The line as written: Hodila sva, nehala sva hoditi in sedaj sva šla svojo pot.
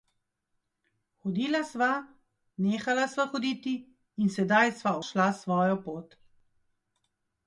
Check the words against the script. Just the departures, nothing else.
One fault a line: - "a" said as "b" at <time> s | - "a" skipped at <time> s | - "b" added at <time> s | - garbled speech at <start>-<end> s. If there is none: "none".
none